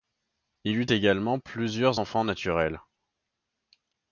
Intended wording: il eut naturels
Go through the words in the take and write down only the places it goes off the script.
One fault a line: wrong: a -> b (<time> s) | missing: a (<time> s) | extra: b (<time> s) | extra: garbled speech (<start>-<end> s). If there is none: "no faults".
extra: également plusieurs enfants (0.9 s)